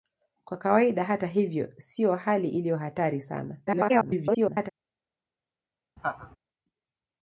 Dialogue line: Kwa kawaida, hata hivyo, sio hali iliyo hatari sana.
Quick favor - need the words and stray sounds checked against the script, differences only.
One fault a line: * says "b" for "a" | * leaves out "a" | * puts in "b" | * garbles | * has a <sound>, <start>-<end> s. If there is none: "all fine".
* garbles
* has a laugh, 6.0-6.4 s